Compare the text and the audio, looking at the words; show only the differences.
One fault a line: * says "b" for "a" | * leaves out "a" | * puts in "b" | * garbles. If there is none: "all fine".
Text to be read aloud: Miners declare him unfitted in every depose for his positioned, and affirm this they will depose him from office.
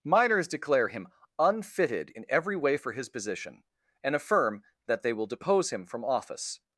* says "way" for "depose"
* says "position" for "positioned"
* says "that" for "this"